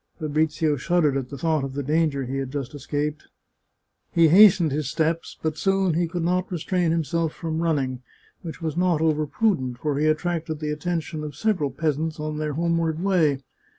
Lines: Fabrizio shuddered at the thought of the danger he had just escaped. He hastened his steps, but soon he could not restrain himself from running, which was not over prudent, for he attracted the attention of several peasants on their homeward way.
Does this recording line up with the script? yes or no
yes